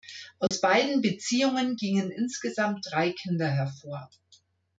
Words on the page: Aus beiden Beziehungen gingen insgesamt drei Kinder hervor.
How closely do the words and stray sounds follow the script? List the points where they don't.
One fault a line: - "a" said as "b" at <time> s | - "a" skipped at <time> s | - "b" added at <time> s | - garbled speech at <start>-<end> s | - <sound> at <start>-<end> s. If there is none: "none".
- dropout at 0.5-0.5 s